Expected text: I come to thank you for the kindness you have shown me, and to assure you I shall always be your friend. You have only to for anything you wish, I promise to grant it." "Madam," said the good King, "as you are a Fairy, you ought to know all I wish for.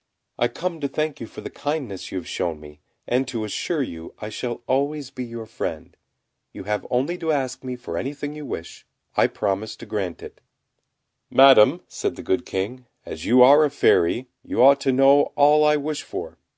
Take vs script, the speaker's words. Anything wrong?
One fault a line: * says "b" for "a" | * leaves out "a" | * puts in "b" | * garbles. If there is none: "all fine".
* puts in "ask me"